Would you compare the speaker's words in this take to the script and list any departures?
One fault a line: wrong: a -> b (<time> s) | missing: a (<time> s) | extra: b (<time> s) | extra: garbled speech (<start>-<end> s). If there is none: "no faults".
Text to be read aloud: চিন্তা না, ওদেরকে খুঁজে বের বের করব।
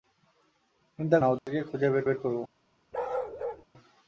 no faults